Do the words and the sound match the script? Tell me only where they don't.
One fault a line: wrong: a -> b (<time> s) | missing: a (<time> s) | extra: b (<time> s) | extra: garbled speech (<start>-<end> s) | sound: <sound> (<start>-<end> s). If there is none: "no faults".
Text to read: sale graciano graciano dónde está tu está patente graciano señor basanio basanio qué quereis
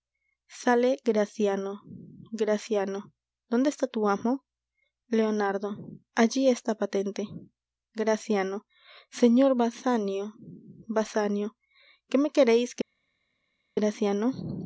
extra: amo leonardo allí (4.1 s)
extra: me (12.2 s)